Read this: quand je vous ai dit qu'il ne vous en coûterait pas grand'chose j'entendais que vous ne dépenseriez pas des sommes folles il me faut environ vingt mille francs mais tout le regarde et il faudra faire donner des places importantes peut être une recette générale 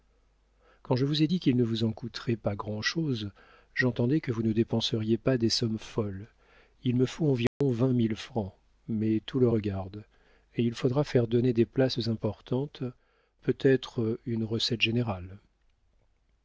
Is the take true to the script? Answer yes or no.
yes